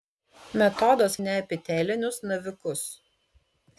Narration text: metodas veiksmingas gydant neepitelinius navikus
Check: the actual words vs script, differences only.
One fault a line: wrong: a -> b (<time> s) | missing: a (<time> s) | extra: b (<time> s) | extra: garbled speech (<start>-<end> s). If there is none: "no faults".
missing: veiksmingas gydant (1.2 s)